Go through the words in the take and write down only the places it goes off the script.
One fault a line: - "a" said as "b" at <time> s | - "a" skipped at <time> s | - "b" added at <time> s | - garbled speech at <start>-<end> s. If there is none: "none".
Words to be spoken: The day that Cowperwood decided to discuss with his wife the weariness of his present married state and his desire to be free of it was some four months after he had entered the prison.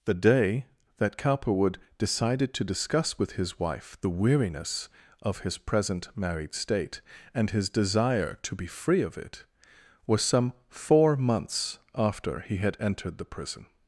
none